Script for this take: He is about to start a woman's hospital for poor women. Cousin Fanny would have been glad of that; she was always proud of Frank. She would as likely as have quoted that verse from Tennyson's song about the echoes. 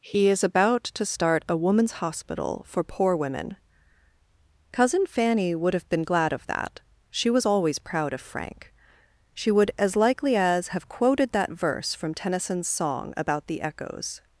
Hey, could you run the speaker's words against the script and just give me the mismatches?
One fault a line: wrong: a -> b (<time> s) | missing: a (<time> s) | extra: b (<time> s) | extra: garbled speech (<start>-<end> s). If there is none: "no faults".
no faults